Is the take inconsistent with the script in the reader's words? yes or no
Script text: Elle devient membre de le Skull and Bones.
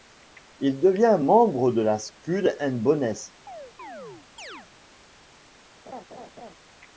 yes